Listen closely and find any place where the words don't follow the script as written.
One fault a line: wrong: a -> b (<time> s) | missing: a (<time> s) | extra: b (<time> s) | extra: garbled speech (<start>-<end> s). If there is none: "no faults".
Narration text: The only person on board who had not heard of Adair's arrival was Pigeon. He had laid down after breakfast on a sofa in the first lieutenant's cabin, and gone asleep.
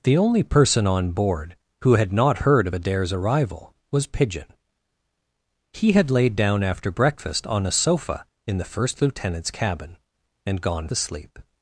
no faults